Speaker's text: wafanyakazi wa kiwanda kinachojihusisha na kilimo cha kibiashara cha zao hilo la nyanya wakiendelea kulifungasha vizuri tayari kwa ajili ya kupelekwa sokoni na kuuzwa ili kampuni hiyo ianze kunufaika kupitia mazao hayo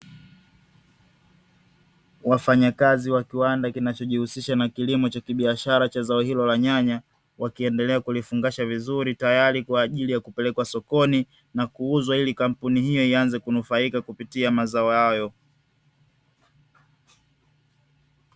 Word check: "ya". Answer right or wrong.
right